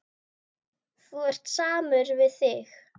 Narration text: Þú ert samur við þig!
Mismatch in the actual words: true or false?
false